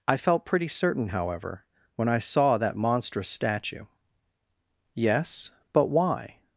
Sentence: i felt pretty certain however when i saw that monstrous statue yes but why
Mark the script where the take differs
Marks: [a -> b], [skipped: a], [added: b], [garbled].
i felt pretty certain however when i saw that monstrous statue yes but why